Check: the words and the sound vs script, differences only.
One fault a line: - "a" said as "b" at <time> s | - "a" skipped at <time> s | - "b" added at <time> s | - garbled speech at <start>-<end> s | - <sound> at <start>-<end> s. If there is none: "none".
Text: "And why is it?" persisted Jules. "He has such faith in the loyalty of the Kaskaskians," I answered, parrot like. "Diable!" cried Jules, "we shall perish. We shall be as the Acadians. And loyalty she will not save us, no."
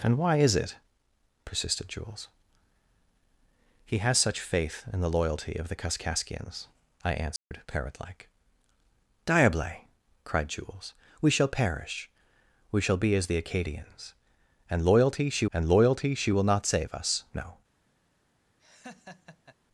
- dropout at 7.4-7.5 s
- "and loyalty she" added at 15.5 s
- laugh at 18.6-19.6 s